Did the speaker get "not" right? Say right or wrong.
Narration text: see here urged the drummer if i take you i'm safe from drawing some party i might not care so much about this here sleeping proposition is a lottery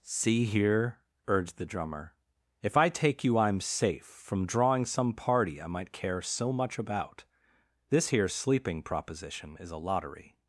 wrong